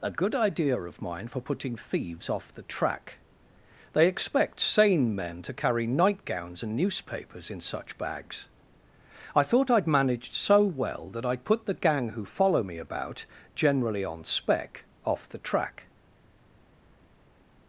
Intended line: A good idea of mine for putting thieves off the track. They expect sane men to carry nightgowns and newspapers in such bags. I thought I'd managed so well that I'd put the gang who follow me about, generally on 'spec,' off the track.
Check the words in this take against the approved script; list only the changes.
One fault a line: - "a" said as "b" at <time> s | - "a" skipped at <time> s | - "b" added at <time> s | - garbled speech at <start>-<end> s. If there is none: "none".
none